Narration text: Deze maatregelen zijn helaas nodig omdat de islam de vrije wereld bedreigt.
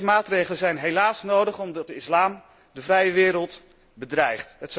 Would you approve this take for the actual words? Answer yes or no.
yes